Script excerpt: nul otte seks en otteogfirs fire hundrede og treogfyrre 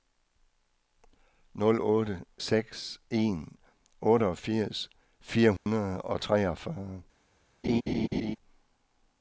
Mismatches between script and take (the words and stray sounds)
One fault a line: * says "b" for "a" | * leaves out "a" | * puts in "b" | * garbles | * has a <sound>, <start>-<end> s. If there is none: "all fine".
* has a dropout, 5.6-5.7 s
* has a laugh, 7.6-8.4 s